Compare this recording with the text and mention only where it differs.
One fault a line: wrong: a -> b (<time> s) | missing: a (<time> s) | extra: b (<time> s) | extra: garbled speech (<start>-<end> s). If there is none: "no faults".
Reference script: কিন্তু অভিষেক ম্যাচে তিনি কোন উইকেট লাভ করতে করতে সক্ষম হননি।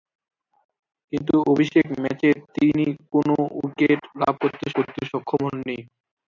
no faults